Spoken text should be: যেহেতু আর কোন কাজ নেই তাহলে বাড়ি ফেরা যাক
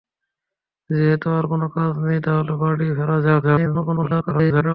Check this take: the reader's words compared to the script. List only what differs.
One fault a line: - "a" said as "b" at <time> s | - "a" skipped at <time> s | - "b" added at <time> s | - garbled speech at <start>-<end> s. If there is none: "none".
- garbled speech at 3.4-4.7 s